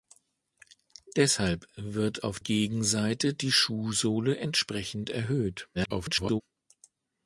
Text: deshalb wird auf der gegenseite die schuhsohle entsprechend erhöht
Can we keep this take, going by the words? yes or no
no